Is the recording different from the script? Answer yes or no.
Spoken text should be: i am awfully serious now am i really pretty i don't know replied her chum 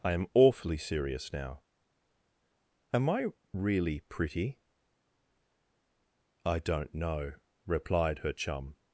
no